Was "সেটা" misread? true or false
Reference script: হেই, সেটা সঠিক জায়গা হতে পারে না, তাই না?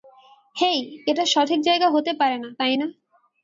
true